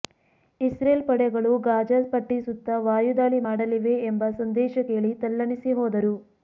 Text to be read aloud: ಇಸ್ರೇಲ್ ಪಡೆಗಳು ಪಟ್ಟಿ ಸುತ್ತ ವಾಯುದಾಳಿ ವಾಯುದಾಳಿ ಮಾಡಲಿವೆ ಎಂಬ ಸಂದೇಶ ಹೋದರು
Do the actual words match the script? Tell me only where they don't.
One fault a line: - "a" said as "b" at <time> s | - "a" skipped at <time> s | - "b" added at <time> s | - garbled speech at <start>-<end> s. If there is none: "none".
- "ಗಾಜಾ" added at 1.7 s
- "ವಾಯುದಾಳಿ" skipped at 3.4 s
- "ಕೇಳಿ ತಲ್ಲಣಿಸಿ" added at 4.9 s